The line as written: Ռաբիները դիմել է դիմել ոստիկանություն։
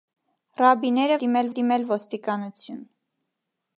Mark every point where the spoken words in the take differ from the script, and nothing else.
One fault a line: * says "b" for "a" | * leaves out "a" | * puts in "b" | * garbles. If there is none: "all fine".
all fine